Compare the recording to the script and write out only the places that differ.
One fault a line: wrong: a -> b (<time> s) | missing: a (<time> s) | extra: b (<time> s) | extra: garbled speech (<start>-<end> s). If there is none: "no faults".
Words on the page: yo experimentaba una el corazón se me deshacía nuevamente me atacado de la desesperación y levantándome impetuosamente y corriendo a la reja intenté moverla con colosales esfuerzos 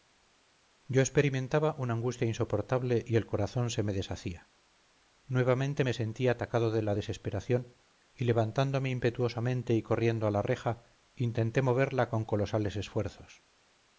extra: angustia insoportable y (1.9 s)
extra: sentí (5.9 s)